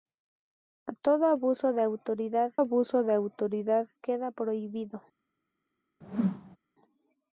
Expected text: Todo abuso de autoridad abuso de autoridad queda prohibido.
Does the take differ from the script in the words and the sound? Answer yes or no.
yes